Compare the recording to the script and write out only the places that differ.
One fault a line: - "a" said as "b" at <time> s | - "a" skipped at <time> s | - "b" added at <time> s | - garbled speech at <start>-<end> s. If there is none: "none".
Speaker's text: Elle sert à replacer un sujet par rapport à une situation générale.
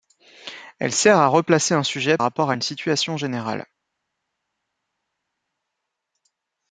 - "par" skipped at 2.2 s